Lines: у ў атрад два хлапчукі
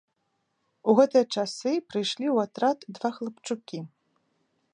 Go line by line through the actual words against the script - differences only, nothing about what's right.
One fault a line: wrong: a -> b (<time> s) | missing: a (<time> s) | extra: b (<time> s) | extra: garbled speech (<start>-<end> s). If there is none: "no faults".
extra: гэтыя часы прыйшлі (1.0 s)